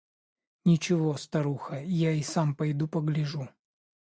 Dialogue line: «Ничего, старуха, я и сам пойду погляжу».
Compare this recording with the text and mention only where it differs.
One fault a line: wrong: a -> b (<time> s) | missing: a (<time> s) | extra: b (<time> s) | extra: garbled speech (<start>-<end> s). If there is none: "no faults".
no faults